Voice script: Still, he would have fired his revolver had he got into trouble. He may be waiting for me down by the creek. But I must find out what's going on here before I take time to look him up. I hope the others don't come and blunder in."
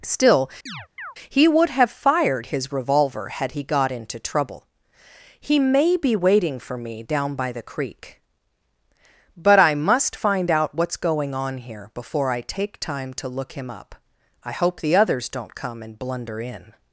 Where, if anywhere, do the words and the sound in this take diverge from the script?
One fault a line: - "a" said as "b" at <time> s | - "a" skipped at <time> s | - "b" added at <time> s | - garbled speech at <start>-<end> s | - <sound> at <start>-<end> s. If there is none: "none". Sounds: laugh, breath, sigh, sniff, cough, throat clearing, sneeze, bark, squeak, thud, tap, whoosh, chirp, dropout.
- chirp at 0.7-1.2 s